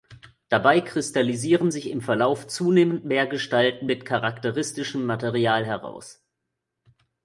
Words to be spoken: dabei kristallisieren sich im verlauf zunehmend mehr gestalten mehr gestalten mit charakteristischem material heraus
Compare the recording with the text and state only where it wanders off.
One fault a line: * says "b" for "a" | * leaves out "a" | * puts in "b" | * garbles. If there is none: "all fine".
* leaves out "mehr gestalten"